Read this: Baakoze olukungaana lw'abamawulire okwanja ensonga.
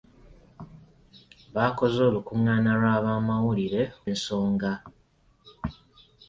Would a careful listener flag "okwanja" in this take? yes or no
yes